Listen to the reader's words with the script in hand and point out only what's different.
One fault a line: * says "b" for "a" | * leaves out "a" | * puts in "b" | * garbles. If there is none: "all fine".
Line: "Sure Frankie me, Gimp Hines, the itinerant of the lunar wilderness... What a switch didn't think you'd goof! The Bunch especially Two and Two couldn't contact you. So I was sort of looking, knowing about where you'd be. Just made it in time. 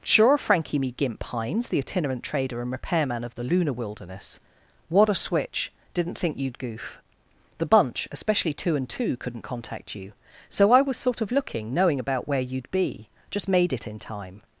* puts in "trader and repairman"